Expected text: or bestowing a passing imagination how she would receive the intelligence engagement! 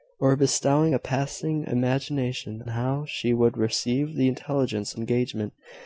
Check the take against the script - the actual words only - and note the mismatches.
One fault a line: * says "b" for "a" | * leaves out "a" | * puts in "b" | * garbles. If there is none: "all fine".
all fine